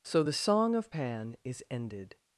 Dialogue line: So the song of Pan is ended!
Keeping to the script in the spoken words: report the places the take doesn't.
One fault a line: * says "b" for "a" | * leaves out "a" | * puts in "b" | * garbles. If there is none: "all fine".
all fine